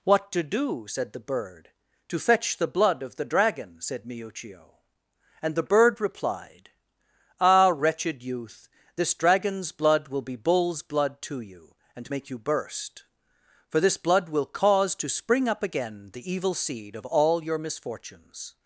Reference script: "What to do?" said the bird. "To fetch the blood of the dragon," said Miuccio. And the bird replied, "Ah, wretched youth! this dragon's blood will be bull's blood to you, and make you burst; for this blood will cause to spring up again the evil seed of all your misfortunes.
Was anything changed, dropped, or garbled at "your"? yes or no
no